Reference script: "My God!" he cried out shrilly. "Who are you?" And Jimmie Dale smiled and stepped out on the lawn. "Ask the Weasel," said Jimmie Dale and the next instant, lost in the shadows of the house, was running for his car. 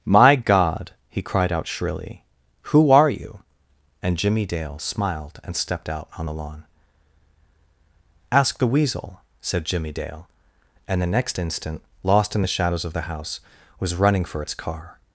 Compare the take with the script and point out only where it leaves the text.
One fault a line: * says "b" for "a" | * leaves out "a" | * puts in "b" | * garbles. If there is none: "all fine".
* says "its" for "his"